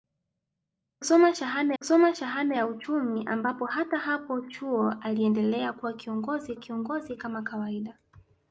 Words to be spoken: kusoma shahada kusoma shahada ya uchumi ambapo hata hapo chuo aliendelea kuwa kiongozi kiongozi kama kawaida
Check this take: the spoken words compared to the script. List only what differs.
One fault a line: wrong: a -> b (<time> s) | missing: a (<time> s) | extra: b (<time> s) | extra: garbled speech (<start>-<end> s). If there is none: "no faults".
no faults